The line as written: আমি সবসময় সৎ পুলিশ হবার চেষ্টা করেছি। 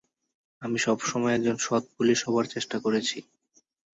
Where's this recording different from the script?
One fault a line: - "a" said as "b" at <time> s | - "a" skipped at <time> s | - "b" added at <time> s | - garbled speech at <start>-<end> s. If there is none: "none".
- "একজন" added at 1.3 s